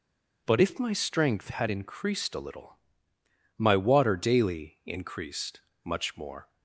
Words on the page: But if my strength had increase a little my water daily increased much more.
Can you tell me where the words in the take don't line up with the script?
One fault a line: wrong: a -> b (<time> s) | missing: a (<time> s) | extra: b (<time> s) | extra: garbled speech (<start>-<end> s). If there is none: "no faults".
wrong: increase -> increased (1.7 s)